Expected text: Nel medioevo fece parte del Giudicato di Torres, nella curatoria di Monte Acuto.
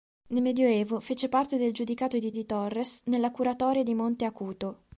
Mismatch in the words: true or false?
true